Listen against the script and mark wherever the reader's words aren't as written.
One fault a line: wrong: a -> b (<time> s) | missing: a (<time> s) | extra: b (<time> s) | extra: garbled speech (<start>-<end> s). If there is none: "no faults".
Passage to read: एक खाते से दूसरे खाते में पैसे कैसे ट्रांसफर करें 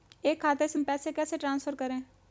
missing: दूसरे खाते (0.8 s)